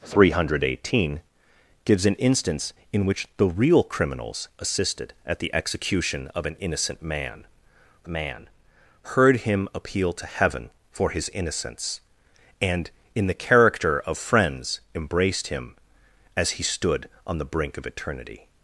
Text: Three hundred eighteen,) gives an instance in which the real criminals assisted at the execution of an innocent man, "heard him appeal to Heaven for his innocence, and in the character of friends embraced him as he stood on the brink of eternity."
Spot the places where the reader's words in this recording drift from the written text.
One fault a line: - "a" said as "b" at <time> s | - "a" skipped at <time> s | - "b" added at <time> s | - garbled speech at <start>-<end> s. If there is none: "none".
- "man" added at 8.1 s